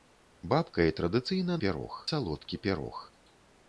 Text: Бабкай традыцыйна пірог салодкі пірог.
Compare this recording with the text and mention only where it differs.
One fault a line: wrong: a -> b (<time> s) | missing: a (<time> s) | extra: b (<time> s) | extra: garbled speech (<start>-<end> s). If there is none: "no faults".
no faults